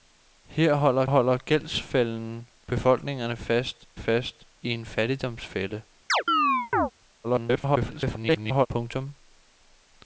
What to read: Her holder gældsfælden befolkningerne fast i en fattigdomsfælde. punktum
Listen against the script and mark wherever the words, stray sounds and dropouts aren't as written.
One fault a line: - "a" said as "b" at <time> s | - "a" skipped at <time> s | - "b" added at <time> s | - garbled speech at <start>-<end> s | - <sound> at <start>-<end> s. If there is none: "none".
- "holder" added at 1.0 s
- "fast" added at 3.9 s
- chirp at 6.1-6.9 s
- garbled speech at 7.2-8.7 s